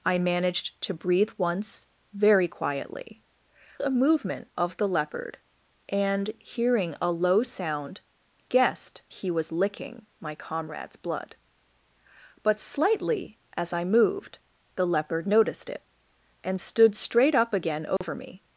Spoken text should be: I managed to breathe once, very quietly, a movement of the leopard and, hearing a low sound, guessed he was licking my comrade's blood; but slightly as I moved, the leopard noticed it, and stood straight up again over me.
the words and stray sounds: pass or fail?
fail